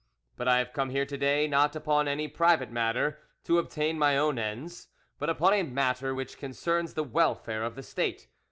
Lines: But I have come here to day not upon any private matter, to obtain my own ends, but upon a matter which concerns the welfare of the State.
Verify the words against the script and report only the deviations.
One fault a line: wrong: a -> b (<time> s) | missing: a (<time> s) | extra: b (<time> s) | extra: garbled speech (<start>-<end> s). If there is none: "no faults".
no faults